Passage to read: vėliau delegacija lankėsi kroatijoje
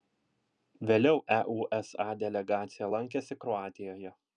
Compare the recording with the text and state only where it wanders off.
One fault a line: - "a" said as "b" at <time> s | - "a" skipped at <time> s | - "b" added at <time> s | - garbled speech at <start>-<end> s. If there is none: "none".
- "eusa" added at 1.4 s